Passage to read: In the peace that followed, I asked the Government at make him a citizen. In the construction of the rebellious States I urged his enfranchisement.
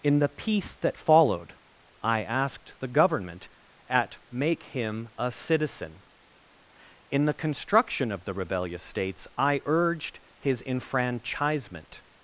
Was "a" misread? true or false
false